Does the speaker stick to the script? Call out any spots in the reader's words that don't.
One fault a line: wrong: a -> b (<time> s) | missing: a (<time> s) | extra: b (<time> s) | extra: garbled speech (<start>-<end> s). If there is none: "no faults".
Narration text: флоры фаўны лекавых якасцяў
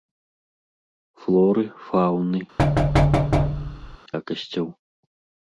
missing: лекавых (2.4 s)